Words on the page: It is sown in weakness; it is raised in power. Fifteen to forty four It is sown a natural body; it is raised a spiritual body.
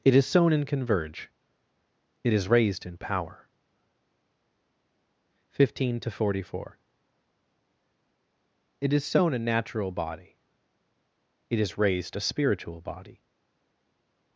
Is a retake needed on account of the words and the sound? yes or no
yes